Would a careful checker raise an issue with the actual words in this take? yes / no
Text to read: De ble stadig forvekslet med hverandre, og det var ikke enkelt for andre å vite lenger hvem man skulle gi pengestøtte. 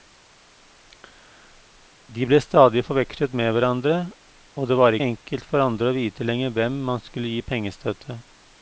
yes